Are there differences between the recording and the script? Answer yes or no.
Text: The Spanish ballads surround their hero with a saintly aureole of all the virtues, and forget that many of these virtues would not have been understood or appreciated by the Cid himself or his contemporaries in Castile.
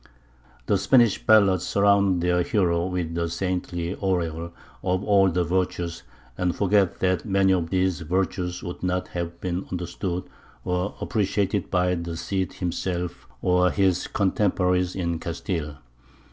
no